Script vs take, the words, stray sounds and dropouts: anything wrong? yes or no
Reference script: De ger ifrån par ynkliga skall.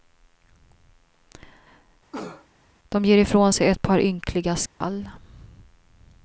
yes